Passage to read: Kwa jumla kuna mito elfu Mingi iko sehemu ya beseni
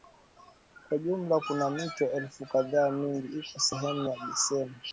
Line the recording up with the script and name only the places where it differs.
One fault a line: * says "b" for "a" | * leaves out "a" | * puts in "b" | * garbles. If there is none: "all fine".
* puts in "kadhaa"